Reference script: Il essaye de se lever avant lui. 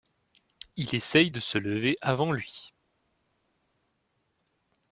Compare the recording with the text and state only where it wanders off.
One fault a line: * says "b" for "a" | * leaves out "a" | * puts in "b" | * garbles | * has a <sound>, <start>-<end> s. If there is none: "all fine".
all fine